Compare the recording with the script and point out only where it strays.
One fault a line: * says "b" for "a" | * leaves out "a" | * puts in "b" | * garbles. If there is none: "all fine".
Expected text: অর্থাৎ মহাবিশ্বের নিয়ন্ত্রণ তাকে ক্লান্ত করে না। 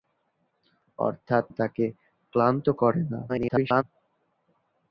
* leaves out "মহাবিশ্বের নিয়ন্ত্রণ"
* garbles